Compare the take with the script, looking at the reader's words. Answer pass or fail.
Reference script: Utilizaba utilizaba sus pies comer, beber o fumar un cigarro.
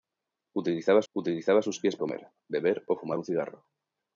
pass